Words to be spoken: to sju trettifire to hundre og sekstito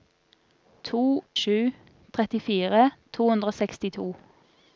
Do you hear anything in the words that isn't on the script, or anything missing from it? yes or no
no